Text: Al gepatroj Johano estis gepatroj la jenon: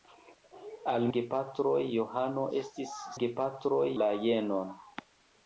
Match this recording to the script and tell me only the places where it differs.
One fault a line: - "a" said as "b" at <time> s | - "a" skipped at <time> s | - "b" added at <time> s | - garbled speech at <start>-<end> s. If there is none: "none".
none